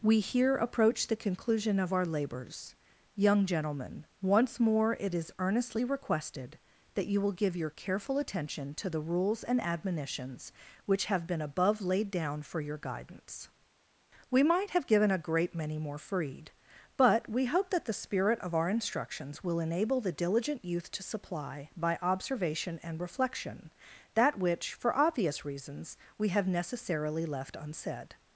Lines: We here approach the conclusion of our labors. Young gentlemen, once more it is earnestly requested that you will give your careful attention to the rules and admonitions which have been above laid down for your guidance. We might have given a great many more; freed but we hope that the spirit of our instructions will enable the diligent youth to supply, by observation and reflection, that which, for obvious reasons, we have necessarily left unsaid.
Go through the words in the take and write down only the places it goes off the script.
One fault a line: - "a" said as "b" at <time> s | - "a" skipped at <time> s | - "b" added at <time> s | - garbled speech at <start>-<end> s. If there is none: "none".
none